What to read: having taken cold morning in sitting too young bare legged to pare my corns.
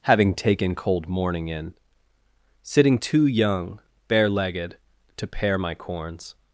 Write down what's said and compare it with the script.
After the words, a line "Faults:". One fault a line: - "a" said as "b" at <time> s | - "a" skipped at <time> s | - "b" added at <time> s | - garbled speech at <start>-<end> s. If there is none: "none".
having taken cold morning in sitting too young bare legged to pare my corns.
Faults:
none